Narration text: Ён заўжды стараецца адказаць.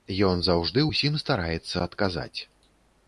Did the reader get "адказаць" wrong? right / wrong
right